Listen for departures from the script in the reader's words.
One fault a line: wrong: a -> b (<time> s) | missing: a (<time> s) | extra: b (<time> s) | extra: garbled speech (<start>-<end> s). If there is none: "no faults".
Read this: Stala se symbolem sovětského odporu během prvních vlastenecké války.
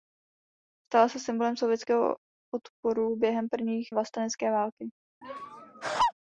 no faults